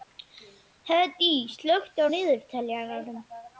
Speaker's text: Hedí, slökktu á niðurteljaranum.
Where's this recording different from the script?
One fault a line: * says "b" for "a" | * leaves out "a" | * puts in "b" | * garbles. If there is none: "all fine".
all fine